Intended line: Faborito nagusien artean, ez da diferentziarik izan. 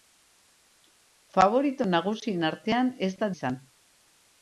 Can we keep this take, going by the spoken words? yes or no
no